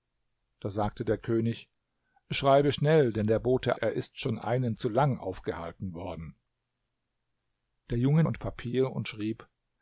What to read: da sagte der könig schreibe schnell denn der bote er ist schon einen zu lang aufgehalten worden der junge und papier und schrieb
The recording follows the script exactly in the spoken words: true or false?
true